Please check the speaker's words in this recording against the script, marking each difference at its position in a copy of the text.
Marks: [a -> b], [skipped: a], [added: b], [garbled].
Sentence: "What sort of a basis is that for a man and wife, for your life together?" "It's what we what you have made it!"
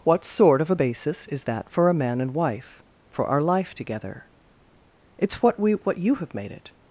"What sort of a basis is that for a man and wife, for [your -> our] life together?" "It's what we what you have made it!"